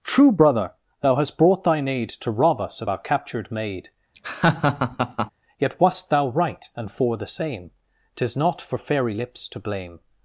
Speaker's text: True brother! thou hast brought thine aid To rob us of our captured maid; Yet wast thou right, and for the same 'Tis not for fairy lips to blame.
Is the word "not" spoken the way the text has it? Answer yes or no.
yes